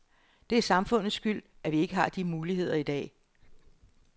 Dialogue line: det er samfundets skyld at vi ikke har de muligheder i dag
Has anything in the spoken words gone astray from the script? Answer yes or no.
no